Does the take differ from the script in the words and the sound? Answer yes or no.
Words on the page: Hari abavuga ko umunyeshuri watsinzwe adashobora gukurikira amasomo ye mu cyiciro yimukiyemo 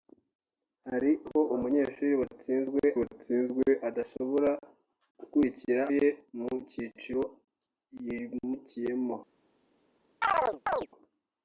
yes